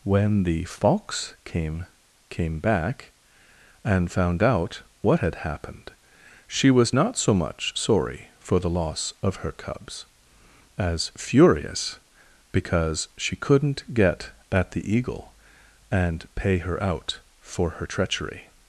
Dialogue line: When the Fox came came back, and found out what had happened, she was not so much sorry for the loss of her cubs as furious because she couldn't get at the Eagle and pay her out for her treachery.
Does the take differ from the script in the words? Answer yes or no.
no